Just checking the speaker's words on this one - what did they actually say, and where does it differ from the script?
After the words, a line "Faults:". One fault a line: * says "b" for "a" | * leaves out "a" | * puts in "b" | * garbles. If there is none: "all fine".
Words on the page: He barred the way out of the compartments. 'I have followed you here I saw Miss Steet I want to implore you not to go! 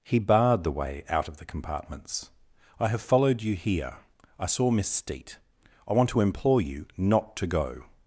He barred the way out of the compartments. 'I have followed you here I saw Miss Steet I want to implore you not to go!
Faults:
all fine